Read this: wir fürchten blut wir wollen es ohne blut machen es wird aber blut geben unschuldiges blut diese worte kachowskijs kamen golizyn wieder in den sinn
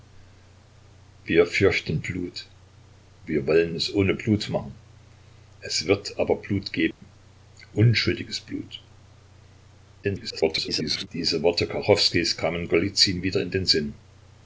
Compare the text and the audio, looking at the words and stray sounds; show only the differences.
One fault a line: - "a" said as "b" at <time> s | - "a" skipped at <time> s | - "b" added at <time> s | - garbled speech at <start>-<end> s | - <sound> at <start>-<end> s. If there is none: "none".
- dropout at 6.9-7.0 s
- garbled speech at 10.0-11.1 s